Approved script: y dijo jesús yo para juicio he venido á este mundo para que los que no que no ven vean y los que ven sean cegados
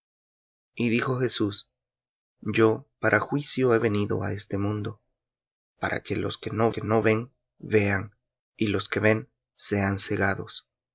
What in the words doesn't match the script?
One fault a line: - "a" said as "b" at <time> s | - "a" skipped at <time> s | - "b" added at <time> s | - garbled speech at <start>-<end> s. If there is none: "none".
none